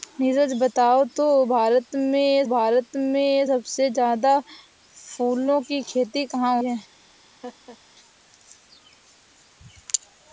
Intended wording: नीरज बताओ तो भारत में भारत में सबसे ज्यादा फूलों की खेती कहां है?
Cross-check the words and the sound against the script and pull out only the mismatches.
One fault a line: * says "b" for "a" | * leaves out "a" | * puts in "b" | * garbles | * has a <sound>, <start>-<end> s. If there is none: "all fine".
* has a laugh, 7.4-7.8 s